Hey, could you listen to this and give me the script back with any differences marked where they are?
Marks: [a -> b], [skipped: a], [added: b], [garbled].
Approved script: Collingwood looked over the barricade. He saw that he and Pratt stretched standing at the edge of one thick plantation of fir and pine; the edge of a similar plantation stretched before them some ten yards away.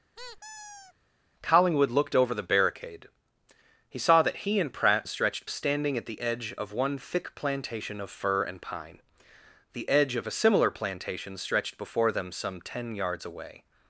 Collingwood looked over the barricade. He saw that he and Pratt stretched standing at the edge of one thick plantation of fir and pine; the edge of a similar plantation stretched before them some ten yards away.